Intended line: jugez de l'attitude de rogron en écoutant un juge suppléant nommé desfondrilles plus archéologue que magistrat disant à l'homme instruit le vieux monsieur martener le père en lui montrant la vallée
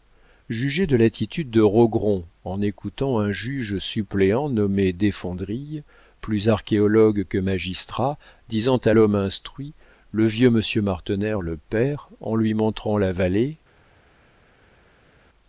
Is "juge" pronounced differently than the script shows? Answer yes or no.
no